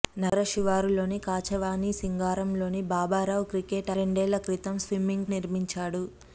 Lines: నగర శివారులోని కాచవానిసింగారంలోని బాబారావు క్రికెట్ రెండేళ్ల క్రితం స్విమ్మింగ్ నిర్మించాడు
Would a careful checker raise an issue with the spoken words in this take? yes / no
no